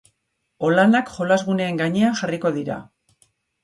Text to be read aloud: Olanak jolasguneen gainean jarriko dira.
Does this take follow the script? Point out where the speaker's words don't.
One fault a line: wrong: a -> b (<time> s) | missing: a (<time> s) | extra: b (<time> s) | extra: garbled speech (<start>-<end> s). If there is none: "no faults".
no faults